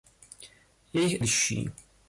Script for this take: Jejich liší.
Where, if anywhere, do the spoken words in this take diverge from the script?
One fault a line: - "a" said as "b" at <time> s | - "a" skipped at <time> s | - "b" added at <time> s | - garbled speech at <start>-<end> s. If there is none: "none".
none